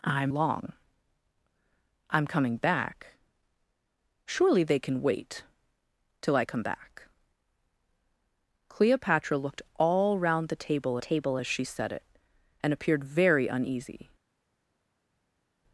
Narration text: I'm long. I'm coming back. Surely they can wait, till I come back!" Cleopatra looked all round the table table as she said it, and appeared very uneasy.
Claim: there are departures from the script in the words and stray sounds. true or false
false